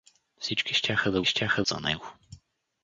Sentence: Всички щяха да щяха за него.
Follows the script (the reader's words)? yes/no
yes